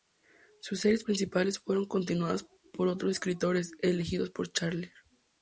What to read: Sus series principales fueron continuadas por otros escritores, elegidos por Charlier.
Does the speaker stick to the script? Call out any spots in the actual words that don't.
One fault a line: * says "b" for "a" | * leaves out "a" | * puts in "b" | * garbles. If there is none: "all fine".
all fine